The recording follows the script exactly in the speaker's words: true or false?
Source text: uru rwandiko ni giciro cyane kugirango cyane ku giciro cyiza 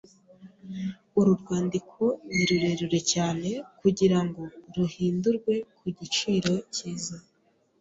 false